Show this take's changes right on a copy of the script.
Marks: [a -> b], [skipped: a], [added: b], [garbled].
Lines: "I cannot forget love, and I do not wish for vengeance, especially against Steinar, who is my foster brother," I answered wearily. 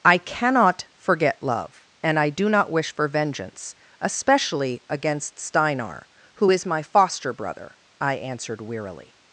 "I cannot forget love, and I do not wish for vengeance, especially against Steinar, who is my foster brother," I answered wearily.